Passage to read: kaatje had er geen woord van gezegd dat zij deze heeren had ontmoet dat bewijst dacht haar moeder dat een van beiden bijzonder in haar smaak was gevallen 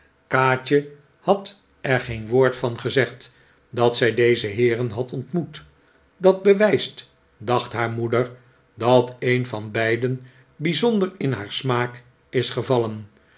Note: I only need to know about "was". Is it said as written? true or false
false